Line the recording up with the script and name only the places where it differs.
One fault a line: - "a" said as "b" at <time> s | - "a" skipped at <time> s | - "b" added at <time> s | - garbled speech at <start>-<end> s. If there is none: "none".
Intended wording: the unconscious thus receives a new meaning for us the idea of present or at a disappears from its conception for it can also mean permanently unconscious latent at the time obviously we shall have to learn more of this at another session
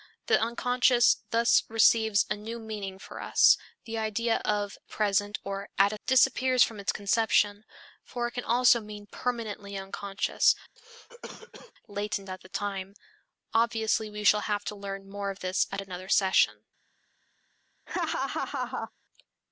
none